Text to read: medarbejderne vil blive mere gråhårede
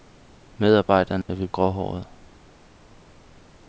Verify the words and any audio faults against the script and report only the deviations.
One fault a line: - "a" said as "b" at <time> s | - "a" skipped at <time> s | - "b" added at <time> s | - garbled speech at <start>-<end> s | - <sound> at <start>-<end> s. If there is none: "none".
- dropout at 1.2-1.3 s
- "blive mere" skipped at 1.5 s